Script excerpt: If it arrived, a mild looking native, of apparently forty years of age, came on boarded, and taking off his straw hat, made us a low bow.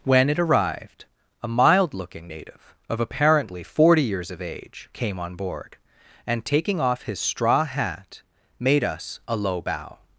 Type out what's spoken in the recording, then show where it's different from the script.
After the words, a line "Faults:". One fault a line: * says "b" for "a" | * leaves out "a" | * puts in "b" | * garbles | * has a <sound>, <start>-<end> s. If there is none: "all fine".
When it arrived, a mild looking native, of apparently forty years of age, came on board, and taking off his straw hat, made us a low bow.
Faults:
* says "When" for "If"
* says "board" for "boarded"